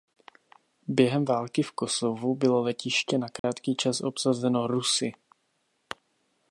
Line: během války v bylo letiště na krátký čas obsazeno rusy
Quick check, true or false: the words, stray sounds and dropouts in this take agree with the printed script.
false